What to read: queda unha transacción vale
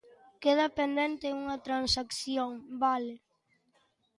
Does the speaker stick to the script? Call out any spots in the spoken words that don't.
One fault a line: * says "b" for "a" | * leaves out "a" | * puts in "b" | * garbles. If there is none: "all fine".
* puts in "pendente"